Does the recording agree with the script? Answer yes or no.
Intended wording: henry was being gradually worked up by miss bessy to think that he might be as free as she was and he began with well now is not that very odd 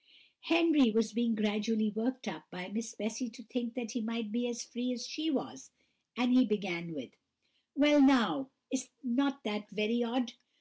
yes